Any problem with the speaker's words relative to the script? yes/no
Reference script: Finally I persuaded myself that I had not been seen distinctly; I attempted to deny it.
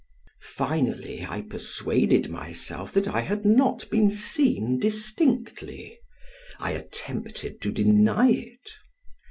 no